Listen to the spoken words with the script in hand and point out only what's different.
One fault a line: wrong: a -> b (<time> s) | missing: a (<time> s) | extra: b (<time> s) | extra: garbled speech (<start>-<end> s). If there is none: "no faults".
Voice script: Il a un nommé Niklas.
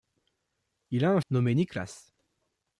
no faults